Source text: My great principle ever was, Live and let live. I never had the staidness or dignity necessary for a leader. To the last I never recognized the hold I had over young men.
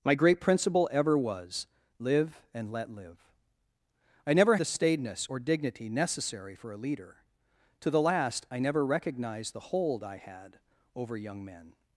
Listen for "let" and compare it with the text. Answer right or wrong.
right